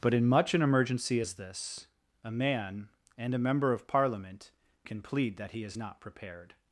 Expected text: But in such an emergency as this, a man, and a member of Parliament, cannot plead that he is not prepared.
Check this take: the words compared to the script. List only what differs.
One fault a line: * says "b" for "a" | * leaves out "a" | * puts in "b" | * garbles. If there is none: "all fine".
* says "much" for "such"
* says "can" for "cannot"